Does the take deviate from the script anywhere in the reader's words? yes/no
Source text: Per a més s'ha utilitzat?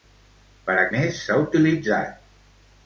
no